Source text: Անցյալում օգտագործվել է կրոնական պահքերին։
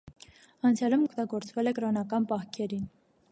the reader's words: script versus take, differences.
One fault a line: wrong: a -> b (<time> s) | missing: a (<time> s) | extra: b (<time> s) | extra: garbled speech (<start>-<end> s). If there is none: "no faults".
no faults